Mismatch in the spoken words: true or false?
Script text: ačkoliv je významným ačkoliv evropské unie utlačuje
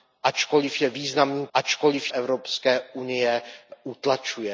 false